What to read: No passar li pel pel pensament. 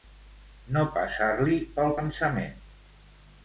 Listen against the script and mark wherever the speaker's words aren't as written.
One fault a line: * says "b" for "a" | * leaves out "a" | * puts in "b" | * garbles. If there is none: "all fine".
* leaves out "pel"